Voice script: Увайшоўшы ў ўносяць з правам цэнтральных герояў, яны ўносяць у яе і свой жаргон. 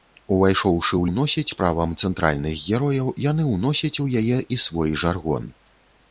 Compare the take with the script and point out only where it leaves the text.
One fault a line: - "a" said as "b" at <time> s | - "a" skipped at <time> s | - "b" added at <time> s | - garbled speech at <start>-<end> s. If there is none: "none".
none